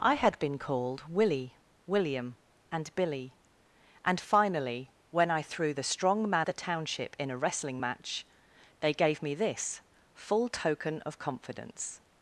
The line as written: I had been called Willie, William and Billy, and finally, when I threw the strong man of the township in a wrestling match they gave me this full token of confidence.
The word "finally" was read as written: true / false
true